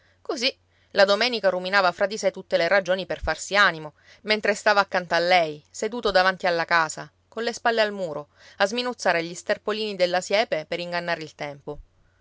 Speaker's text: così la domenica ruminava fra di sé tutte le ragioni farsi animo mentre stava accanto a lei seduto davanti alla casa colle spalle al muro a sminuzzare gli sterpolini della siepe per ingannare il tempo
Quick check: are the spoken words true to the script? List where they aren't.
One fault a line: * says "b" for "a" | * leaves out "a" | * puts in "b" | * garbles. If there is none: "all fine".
* puts in "per"